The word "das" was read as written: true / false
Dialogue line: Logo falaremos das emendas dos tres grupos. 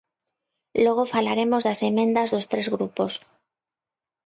true